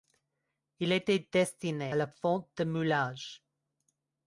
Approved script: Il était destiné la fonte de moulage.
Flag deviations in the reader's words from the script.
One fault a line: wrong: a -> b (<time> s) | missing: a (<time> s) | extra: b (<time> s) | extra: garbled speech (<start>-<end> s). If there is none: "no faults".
no faults